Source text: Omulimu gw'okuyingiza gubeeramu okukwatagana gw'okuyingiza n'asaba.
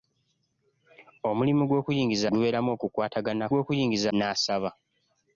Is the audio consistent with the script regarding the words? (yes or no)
yes